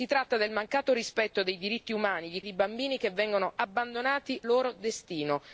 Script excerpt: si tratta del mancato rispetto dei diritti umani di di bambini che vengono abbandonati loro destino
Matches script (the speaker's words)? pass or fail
pass